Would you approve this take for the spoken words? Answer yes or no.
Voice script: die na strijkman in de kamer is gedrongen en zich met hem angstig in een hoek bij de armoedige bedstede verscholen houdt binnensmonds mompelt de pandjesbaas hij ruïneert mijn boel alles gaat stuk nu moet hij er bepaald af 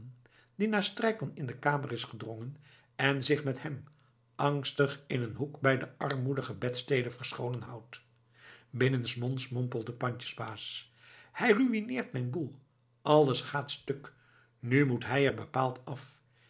yes